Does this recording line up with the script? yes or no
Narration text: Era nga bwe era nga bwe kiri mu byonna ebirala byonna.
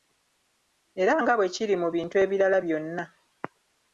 no